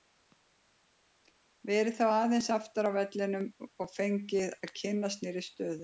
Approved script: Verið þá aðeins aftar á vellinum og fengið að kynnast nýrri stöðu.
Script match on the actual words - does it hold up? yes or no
yes